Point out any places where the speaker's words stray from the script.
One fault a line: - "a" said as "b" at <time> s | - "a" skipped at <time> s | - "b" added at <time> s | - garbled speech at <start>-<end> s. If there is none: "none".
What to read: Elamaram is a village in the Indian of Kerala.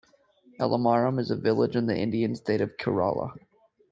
- "state" added at 2.3 s